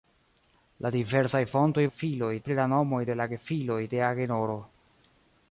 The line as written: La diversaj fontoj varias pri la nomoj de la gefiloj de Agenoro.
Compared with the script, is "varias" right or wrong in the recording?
wrong